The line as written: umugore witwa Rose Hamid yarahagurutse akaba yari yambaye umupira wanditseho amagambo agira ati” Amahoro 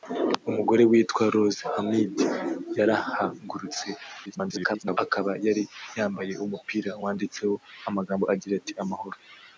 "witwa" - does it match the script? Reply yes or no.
yes